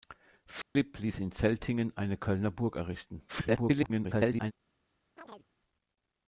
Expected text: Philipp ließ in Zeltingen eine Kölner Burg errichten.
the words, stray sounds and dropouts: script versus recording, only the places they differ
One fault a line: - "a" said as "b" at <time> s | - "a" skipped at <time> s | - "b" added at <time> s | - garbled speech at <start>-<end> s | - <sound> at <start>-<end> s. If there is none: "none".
- dropout at 0.6-0.8 s
- garbled speech at 3.3-4.5 s
- chirp at 5.2-5.5 s